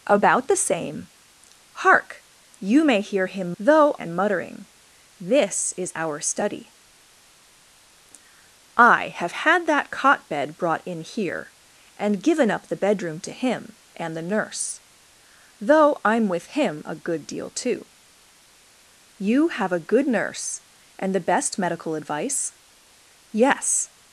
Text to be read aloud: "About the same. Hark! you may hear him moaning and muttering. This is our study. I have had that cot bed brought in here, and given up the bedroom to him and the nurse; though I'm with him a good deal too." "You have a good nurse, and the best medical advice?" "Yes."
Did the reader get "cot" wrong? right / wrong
right